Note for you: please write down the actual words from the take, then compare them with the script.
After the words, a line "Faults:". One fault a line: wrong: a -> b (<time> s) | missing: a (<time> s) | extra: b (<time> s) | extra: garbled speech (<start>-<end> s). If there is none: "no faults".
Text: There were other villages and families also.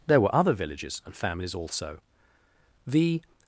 There were other villages and families also. The
Faults:
extra: The (2.9 s)